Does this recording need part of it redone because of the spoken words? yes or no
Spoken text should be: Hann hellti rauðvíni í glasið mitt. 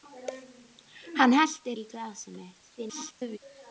yes